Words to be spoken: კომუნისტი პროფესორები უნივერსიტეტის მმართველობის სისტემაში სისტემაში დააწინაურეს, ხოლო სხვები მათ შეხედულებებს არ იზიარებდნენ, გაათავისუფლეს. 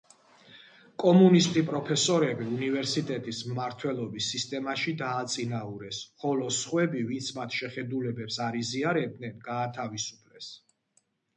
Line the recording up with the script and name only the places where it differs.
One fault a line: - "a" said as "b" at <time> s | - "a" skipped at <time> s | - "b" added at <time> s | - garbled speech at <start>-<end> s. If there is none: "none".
- "სისტემაში" skipped at 4.9 s
- "ვინც" added at 7.1 s